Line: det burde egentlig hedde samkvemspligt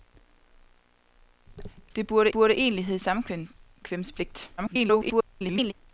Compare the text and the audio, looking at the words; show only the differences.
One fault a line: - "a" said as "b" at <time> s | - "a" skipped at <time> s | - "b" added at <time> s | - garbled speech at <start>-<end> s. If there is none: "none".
- "burde" added at 2.3 s
- garbled speech at 4.6-5.7 s